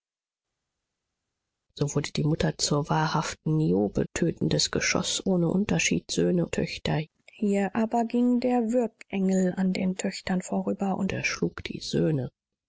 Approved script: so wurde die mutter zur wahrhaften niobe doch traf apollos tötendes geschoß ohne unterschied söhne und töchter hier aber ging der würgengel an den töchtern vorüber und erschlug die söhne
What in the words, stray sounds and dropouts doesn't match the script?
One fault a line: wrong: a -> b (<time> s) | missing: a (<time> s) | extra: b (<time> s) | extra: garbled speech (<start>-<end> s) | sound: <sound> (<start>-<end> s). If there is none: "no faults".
missing: doch traf apollos (4.0 s)
missing: und (6.5 s)